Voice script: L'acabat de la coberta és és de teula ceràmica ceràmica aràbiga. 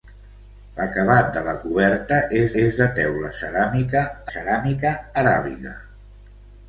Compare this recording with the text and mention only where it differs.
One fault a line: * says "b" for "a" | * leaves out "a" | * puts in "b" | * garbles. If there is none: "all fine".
all fine